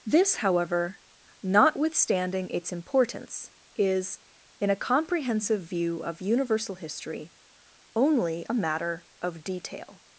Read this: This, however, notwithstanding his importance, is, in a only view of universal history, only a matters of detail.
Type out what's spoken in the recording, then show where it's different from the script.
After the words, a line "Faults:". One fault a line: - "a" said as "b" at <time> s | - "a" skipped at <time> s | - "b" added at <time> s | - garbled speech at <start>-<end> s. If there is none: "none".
This, however, notwithstanding its importance, is, in a comprehensive view of universal history, only a matter of detail.
Faults:
- "his" said as "its" at 2.5 s
- "only" said as "comprehensive" at 4.8 s
- "matters" said as "matter" at 8.5 s